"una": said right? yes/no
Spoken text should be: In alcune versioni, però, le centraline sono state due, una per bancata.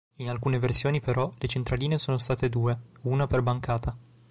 yes